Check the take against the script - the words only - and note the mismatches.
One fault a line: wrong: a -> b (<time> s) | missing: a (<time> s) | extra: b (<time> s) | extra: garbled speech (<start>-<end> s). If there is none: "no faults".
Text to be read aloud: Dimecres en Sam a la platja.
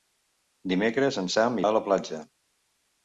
no faults